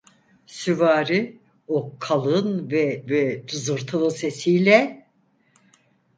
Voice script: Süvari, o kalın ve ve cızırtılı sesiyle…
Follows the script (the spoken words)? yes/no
yes